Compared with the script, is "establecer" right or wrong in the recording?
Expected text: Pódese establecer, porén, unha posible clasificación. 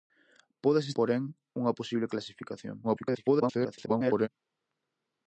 wrong